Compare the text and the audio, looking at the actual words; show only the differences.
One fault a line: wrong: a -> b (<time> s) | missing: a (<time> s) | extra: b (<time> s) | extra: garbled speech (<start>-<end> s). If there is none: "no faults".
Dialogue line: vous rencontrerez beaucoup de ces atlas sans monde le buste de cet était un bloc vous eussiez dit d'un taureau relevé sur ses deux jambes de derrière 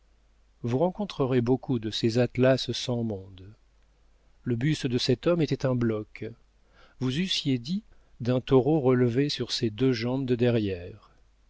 extra: homme (5.3 s)